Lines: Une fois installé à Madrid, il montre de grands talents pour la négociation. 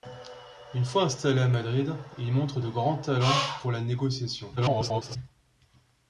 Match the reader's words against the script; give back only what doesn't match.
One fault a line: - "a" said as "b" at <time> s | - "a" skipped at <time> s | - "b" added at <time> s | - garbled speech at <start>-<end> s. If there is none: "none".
- garbled speech at 4.6-5.2 s